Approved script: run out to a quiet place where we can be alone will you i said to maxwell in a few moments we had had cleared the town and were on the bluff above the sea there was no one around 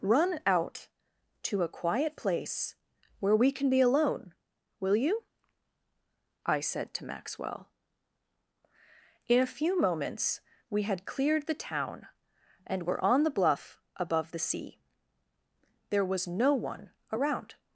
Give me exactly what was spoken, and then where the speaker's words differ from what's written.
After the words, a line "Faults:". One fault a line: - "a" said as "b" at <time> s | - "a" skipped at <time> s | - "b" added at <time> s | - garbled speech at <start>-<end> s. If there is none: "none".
run out to a quiet place where we can be alone will you i said to maxwell in a few moments we had cleared the town and were on the bluff above the sea there was no one around
Faults:
- "had" skipped at 11.1 s